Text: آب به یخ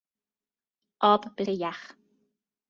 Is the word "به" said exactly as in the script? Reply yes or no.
yes